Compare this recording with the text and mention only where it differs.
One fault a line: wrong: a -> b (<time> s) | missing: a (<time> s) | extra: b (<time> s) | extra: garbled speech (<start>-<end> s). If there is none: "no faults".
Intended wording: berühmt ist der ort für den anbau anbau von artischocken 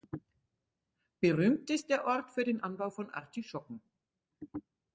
missing: anbau (2.9 s)